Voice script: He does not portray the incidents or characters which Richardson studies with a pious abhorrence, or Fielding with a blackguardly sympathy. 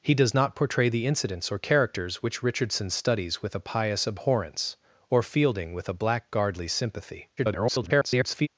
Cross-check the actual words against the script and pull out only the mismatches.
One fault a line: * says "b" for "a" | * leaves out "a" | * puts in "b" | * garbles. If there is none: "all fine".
* garbles